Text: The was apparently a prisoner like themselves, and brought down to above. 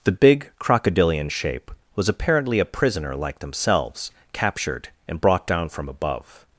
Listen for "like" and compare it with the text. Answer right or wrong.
right